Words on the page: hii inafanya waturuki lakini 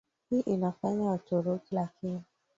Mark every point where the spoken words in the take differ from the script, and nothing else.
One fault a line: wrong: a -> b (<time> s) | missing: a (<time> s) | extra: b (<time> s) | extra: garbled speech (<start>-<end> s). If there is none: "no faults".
no faults